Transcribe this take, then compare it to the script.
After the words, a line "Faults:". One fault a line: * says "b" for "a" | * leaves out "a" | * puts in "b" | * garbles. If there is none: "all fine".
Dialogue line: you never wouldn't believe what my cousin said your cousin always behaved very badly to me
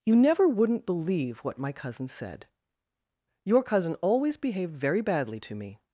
you never wouldn't believe what my cousin said your cousin always behaved very badly to me
Faults:
all fine